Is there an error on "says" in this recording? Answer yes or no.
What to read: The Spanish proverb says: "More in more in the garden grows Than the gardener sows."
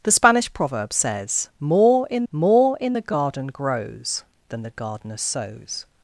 no